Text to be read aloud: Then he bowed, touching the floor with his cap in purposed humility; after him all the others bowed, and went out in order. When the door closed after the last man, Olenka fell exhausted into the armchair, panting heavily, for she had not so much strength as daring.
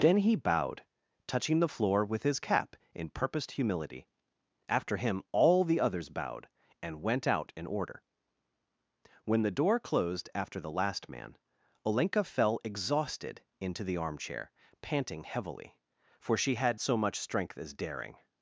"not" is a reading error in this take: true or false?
true